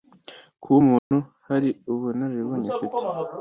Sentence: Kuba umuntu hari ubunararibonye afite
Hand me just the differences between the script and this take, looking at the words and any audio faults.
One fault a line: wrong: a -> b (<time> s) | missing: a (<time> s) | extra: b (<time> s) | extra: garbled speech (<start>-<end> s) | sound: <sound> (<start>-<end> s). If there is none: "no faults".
sound: dropout (1.0-1.1 s)